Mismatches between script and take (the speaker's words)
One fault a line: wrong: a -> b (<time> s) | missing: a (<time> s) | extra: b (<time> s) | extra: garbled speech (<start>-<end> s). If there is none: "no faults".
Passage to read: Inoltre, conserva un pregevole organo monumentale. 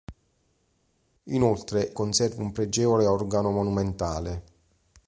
no faults